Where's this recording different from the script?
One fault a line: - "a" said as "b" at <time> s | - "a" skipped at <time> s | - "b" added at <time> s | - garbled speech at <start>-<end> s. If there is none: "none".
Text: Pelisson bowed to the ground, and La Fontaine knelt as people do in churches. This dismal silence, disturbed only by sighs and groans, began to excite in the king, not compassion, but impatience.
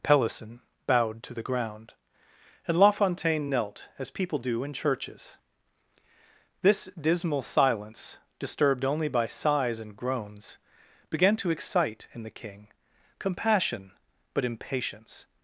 - "not" skipped at 12.7 s